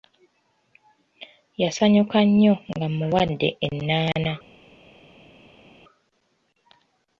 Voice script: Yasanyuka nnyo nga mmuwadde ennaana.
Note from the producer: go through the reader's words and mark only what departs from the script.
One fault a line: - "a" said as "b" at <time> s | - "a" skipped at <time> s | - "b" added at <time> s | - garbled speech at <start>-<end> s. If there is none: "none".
none